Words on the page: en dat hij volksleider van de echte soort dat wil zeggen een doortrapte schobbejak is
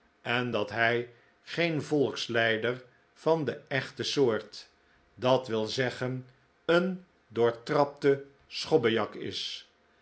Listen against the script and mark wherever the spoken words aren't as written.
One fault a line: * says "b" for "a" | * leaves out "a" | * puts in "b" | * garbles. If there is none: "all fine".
* puts in "geen"